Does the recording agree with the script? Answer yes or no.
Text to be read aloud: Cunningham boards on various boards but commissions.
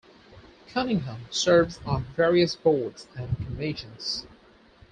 no